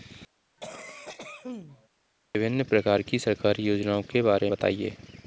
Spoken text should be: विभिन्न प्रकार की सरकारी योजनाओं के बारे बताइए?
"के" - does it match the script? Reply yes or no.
yes